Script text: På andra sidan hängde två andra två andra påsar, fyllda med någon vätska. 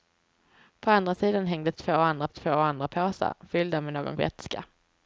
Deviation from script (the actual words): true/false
false